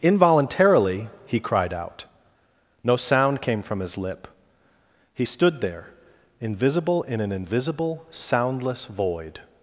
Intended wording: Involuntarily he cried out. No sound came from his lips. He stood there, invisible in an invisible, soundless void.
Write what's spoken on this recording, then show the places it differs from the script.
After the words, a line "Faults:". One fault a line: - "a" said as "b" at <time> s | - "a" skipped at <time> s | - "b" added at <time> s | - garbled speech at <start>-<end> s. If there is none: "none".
Involuntarily he cried out. No sound came from his lip. He stood there, invisible in an invisible, soundless void.
Faults:
- "lips" said as "lip" at 4.0 s